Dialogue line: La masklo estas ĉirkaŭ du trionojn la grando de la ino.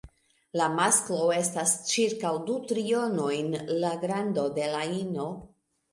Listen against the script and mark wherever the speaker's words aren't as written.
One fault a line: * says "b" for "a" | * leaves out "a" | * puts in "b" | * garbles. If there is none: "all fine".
all fine